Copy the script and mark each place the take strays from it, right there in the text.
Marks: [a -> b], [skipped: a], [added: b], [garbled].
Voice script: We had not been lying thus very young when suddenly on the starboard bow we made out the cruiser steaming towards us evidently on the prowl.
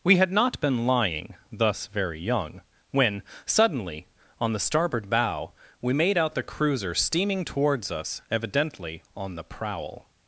We had not been lying thus very young when suddenly on the starboard bow we made out the cruiser steaming towards us evidently on the prowl.